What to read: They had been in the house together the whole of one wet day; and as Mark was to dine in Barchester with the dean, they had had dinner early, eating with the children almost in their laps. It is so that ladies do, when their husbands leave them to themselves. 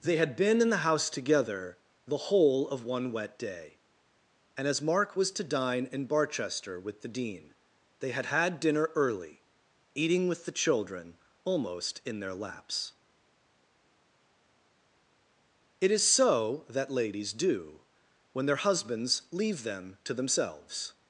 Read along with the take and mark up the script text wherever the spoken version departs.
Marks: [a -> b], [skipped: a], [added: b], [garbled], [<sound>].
They had been in the house together the whole of one wet day; and as Mark was to dine in Barchester with the dean, they had had dinner early, eating with the children almost in their laps. It is so that ladies do, when their husbands leave them to themselves.